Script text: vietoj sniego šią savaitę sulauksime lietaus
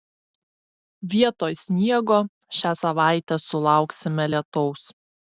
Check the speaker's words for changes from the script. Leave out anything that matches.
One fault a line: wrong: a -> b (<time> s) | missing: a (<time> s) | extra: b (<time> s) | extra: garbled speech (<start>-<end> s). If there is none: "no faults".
no faults